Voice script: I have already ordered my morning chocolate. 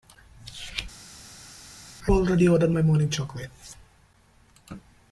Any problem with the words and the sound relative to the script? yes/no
yes